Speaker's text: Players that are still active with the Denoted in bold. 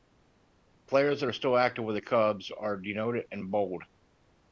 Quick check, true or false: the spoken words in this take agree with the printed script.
false